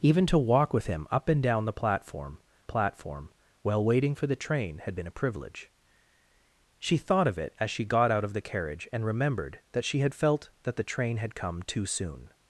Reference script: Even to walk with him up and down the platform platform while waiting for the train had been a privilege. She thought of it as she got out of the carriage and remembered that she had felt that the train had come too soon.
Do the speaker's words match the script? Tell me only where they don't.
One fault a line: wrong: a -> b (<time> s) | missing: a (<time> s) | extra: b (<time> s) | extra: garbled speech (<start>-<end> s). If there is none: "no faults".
no faults